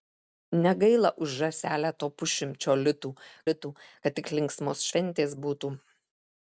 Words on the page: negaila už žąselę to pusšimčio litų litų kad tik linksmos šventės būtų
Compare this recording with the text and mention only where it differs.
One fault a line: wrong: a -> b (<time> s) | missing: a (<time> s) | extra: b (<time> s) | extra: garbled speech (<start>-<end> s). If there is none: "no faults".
no faults